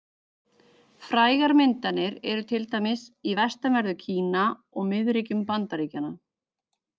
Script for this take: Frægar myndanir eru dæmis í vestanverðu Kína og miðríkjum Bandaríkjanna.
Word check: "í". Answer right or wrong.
right